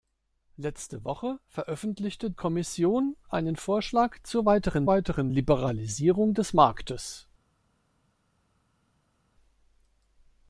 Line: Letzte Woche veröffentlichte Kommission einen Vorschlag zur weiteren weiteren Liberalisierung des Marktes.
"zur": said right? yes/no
yes